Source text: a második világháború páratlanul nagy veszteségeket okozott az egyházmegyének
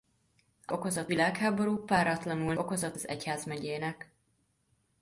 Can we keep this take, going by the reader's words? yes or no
no